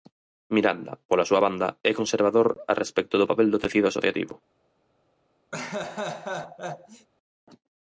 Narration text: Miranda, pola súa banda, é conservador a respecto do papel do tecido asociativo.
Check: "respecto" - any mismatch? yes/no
no